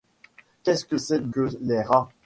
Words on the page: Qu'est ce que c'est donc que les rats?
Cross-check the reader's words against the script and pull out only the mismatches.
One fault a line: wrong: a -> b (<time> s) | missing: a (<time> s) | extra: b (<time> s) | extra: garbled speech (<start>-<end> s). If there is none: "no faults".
missing: donc (1.3 s)